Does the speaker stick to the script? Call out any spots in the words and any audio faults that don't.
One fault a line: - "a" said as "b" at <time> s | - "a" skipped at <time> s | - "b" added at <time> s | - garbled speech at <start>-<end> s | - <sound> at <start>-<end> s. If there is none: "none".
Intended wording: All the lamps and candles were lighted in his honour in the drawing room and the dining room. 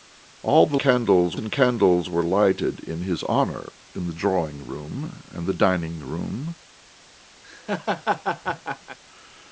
- "lamps" said as "candles" at 0.8 s
- laugh at 7.4-9.0 s